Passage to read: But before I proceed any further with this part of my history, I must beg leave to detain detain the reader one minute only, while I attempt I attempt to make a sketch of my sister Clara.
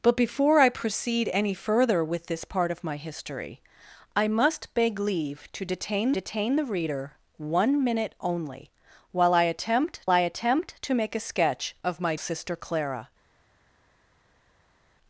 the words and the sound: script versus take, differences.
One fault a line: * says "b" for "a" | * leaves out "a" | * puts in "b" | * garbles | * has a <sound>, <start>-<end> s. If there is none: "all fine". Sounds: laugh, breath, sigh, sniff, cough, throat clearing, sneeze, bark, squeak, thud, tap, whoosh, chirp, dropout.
all fine